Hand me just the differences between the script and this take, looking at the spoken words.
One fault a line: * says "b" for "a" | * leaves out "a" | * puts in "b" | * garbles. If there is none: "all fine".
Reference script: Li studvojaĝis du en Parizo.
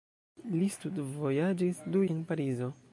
all fine